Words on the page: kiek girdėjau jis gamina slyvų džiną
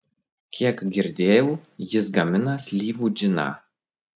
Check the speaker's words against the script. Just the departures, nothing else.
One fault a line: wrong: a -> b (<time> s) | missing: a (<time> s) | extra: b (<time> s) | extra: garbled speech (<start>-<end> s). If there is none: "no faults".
no faults